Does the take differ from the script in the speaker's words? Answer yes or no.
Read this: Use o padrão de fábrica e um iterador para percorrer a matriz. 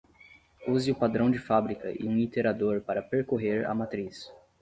no